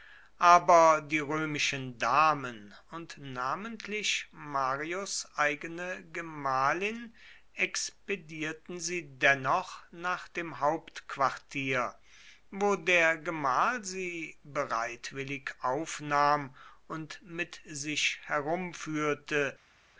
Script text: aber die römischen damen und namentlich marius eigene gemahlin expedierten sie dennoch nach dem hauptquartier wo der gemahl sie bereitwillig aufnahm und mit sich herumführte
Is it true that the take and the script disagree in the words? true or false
false